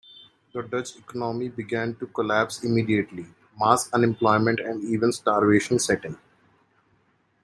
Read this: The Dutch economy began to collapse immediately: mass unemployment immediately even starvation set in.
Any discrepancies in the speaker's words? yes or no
yes